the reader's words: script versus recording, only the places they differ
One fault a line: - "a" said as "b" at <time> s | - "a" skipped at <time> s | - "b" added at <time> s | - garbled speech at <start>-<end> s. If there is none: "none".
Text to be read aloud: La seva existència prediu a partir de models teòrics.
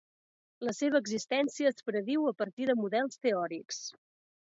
- "es" added at 1.7 s